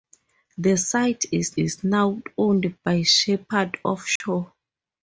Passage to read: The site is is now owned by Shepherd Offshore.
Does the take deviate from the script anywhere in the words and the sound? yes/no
yes